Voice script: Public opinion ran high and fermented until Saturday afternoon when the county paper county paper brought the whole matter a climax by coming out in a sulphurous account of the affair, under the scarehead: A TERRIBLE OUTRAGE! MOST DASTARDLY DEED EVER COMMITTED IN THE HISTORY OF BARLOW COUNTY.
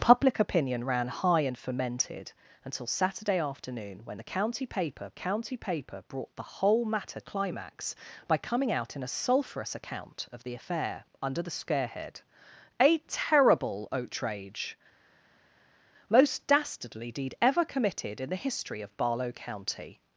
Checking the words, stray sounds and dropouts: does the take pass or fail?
pass